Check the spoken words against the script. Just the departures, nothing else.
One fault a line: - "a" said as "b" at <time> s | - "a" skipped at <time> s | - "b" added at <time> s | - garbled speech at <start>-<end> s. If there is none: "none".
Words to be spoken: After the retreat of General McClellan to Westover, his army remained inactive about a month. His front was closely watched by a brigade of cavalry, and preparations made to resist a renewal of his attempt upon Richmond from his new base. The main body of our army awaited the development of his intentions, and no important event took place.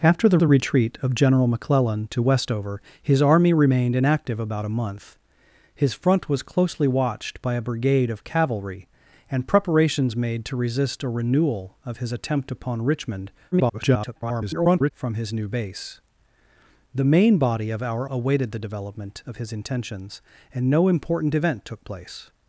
- "the" added at 0.4 s
- garbled speech at 13.5-14.9 s
- "army" skipped at 18.1 s